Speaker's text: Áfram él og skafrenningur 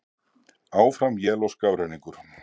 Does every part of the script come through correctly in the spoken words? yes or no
yes